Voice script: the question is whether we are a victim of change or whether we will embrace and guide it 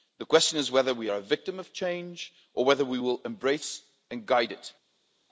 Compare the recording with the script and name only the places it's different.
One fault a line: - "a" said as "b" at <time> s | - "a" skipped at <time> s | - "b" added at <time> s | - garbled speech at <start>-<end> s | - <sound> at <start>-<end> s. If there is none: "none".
none